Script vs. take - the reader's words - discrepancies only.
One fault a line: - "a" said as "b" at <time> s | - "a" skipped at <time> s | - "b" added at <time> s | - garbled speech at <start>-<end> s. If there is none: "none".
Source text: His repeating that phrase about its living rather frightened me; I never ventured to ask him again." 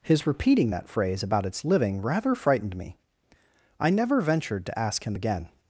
none